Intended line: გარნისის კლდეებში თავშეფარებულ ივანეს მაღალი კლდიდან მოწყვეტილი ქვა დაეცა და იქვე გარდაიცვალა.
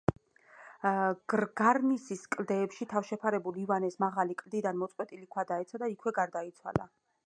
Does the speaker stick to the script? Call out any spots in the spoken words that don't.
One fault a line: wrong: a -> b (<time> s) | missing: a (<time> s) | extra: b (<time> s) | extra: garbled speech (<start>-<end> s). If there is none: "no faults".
no faults